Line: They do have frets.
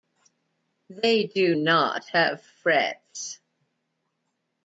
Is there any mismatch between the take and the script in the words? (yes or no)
yes